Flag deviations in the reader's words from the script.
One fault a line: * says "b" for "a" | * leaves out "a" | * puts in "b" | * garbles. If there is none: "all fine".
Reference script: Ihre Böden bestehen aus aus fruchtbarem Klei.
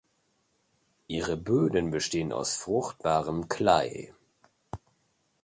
* leaves out "aus"